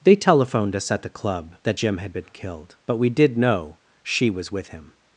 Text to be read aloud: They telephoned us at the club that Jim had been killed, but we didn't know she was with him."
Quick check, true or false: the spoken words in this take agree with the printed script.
false